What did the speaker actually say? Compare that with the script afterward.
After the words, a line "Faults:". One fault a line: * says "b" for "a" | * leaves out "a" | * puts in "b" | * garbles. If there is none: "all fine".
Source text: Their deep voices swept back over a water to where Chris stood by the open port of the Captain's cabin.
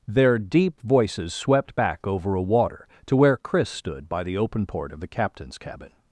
Their deep voices swept back over a water to where Chris stood by the open port of the Captain's cabin.
Faults:
all fine